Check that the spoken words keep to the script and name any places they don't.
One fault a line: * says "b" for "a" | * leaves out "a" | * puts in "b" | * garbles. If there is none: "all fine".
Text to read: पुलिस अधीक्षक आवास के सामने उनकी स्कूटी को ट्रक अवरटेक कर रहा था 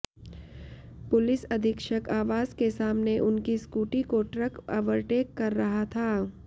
all fine